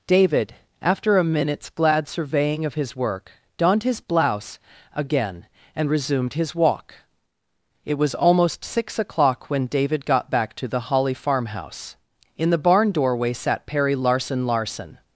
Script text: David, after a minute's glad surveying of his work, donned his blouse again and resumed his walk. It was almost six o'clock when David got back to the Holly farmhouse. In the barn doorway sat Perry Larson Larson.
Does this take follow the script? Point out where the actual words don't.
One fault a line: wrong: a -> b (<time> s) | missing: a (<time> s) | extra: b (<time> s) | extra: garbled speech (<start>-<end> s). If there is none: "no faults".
no faults